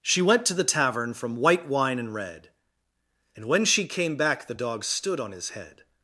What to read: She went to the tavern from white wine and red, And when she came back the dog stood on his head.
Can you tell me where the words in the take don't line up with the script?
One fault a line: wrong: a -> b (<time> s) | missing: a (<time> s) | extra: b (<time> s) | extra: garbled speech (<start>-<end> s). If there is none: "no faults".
no faults